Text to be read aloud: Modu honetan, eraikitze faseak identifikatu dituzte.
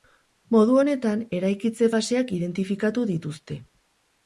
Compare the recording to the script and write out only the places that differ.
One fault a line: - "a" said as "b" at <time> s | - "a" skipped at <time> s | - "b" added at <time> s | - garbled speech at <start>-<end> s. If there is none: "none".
none